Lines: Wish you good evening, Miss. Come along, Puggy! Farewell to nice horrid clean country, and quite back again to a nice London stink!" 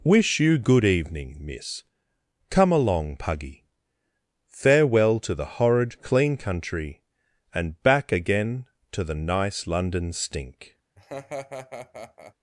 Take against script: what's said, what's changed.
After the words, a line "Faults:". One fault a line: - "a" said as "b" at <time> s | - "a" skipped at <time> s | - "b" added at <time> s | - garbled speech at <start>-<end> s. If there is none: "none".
Wish you good evening, Miss. Come along, Puggy! Farewell to the horrid clean country, and back again to the nice London stink!"
Faults:
- "nice" said as "the" at 5.3 s
- "quite" skipped at 7.8 s
- "a" said as "the" at 9.0 s